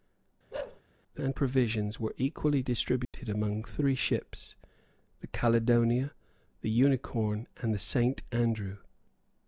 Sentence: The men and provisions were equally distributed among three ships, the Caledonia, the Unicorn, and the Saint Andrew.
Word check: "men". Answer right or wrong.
wrong